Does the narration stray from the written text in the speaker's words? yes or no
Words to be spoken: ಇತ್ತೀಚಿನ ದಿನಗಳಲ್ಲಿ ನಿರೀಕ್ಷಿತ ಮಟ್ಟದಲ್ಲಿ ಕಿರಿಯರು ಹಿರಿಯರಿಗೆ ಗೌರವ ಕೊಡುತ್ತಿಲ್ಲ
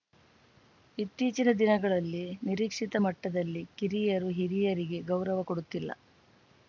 no